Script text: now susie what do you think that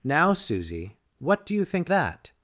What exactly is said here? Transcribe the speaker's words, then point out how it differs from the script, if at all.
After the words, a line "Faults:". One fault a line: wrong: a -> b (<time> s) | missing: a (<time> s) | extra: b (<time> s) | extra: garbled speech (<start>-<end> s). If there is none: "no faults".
now susie what do you think that
Faults:
no faults